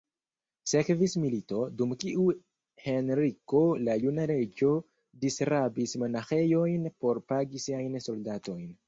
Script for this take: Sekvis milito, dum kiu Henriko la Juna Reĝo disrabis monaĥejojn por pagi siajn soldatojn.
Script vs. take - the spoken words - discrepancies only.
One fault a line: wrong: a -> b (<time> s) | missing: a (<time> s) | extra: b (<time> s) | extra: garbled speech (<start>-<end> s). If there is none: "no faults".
no faults